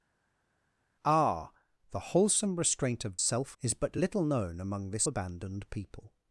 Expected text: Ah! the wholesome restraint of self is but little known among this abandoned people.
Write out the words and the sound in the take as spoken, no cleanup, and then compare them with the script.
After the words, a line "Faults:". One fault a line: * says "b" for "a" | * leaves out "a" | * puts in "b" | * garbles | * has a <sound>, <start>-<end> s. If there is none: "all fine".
Ah! the wholesome restraint of self is but little known among this abandoned people.
Faults:
all fine